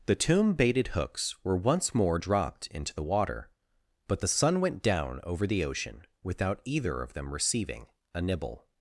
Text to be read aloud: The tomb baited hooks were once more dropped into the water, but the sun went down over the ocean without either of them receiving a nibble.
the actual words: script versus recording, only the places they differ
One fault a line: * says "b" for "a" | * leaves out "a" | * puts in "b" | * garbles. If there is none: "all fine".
all fine